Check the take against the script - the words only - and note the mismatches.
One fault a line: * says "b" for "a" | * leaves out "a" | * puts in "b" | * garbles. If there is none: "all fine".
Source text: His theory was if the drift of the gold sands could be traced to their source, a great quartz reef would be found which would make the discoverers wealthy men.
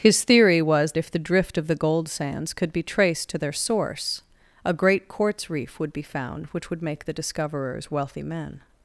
all fine